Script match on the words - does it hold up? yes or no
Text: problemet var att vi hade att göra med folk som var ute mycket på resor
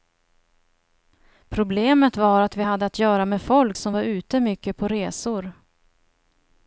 yes